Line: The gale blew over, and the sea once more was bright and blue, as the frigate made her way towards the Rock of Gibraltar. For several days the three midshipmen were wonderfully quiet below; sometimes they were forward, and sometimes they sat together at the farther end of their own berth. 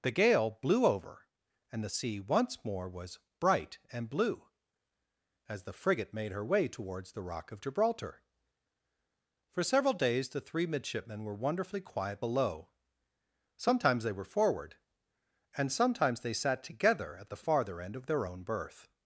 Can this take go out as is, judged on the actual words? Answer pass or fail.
pass